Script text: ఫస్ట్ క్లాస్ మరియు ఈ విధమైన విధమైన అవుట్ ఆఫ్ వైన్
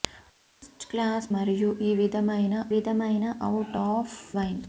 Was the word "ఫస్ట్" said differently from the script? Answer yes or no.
no